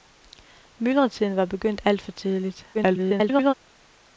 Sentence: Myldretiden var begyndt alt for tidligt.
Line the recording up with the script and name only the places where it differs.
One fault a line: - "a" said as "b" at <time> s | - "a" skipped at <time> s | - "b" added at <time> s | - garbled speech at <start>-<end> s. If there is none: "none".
- garbled speech at 2.7-3.5 s